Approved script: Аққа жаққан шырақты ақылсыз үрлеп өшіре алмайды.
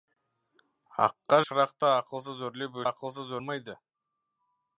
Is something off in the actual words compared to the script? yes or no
yes